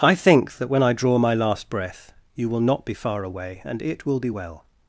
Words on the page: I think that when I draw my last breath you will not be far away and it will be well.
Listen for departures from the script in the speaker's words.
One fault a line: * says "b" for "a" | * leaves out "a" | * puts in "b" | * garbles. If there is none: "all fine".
all fine